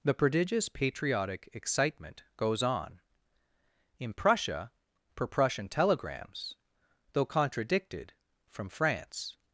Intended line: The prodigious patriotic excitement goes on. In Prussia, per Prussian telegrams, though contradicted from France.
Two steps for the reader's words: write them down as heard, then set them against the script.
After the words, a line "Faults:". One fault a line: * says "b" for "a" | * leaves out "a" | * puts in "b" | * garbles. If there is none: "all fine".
The prodigious patriotic excitement goes on. In Prussia, per Prussian telegrams, though contradicted from France.
Faults:
all fine